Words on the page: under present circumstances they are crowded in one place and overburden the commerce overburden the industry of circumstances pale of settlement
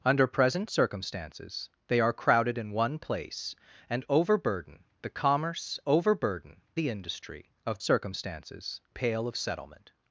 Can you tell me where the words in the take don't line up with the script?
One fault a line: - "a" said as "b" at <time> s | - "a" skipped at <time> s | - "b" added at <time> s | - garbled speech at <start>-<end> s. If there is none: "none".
none